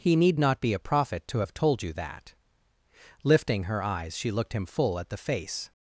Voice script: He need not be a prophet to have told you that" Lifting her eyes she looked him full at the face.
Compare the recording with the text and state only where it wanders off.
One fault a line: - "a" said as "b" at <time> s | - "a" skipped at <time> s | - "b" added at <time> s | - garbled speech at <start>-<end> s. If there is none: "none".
none